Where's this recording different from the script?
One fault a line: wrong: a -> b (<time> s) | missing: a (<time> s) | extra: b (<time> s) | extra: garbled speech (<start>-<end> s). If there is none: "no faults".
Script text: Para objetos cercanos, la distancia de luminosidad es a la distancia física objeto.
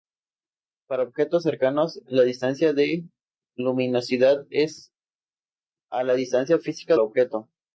no faults